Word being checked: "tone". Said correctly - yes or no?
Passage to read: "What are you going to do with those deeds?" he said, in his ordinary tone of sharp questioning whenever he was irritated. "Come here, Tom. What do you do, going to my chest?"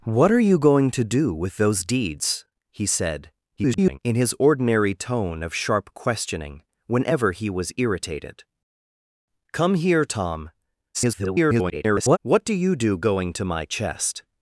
yes